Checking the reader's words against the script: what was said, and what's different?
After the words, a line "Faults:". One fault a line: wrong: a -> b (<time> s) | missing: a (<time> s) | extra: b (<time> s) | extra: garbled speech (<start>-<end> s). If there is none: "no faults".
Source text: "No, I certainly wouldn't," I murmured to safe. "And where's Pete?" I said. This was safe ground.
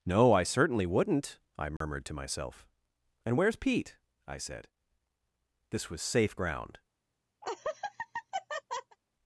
"No, I certainly wouldn't," I murmured to myself. "And where's Pete?" I said. This was safe ground.
Faults:
wrong: safe -> myself (2.1 s)